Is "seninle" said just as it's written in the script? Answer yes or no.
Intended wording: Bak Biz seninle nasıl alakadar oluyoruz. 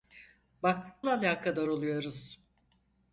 no